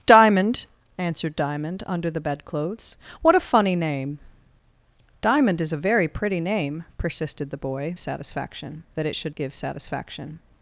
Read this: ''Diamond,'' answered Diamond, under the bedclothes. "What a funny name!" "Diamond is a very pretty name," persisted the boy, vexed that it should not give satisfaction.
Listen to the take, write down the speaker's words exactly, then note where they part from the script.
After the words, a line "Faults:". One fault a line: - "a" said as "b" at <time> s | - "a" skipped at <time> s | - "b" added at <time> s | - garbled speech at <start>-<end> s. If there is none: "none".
''Diamond,'' answered Diamond, under the bedclothes. "What a funny name!" "Diamond is a very pretty name," persisted the boy, satisfaction that it should give satisfaction.
Faults:
- "vexed" said as "satisfaction" at 8.0 s
- "not" skipped at 9.4 s